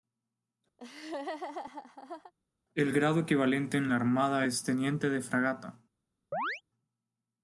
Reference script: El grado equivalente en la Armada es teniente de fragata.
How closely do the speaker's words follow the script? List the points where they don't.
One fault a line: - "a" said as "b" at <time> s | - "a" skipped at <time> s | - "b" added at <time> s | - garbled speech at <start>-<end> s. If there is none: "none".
none